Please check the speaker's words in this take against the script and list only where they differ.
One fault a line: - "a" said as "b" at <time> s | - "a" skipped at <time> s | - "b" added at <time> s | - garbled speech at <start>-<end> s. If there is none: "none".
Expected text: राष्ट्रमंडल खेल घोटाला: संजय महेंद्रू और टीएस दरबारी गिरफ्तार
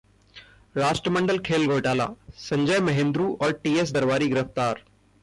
none